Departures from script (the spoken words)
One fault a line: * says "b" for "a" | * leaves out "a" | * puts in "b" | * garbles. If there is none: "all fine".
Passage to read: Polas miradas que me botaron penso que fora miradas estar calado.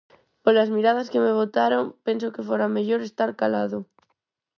* says "mellor" for "miradas"